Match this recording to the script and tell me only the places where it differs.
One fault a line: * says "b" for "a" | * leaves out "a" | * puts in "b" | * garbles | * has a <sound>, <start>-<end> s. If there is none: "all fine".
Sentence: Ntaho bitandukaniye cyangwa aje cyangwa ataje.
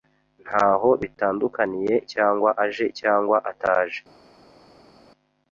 all fine